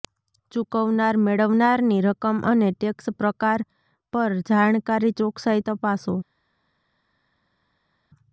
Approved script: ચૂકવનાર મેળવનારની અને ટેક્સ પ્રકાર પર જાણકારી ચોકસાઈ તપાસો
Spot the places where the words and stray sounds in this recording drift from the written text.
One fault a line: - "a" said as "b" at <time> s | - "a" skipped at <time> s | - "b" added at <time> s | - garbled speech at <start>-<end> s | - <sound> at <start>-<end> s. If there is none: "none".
- "રકમ" added at 2.0 s